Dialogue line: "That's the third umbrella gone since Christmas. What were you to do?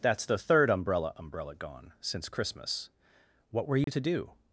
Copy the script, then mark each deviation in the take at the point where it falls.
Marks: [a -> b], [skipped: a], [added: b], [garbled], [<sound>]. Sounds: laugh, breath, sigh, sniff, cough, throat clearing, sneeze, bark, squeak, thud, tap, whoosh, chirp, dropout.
"That's the third umbrella [added: umbrella] gone since Christmas. What were you [dropout] to do?